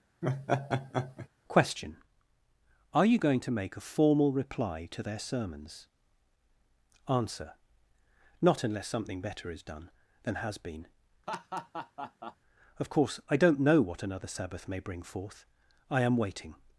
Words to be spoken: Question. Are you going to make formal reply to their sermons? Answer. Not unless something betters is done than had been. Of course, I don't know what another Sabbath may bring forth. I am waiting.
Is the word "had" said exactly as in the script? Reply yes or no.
no